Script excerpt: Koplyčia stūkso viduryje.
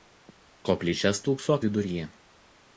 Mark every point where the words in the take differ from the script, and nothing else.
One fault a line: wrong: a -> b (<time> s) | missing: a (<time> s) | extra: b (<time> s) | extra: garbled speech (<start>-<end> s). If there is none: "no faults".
no faults